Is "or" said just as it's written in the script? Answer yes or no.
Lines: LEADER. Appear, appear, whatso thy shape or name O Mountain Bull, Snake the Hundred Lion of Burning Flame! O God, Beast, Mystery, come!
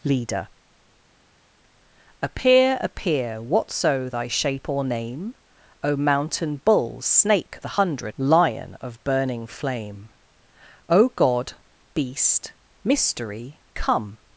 yes